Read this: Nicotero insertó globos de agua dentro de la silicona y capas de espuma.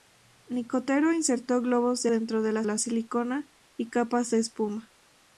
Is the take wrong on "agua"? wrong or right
wrong